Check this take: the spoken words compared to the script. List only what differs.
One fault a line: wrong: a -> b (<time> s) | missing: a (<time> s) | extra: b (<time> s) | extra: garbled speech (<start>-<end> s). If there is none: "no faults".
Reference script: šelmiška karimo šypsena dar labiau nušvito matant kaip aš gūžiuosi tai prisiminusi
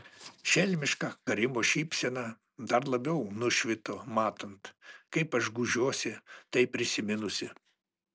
no faults